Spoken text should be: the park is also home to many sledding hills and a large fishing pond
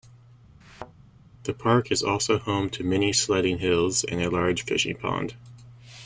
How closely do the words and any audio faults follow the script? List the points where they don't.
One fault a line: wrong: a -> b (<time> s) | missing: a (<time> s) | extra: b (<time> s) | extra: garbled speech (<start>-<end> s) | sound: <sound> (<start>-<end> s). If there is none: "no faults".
sound: thud (0.6-0.9 s)